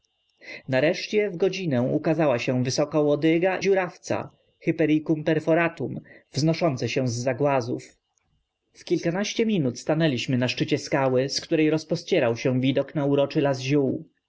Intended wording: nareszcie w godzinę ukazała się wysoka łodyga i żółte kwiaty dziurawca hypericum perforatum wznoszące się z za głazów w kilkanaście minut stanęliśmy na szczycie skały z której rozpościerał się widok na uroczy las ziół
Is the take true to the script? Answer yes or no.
no